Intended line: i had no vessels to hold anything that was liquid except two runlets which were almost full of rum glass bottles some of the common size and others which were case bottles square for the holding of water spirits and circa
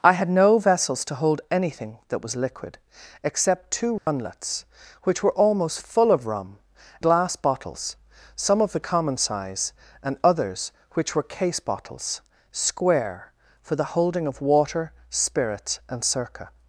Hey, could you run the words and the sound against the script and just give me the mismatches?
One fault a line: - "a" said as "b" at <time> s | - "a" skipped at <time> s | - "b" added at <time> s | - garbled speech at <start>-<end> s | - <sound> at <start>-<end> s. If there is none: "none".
- dropout at 4.0-4.1 s